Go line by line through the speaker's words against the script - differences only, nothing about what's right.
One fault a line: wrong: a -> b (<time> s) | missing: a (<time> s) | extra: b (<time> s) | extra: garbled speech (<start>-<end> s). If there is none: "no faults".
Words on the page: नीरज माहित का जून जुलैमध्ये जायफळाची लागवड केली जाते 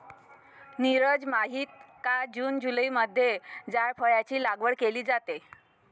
no faults